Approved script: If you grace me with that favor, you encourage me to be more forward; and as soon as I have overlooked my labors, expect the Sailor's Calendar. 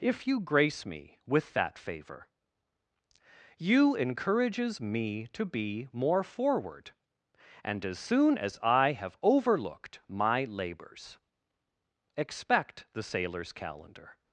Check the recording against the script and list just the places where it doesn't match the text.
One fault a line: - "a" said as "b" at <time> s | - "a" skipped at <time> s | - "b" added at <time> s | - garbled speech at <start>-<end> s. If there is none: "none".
- "encourage" said as "encourages" at 4.0 s